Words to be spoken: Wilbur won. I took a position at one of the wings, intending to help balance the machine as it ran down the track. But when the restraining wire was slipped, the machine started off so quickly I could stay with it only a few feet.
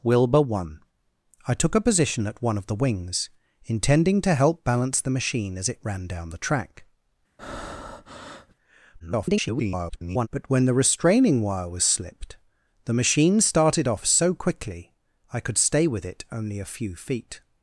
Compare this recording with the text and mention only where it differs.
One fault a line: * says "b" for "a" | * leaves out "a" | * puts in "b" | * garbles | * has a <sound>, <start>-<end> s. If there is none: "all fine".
* has a breath, 7.4-8.5 s
* garbles